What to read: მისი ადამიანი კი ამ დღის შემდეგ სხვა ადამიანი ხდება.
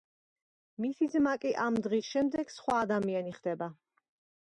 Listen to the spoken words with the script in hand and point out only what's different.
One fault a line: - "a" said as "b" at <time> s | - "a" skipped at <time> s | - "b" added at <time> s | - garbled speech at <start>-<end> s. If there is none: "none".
- "ადამიანი" said as "ძმა" at 1.2 s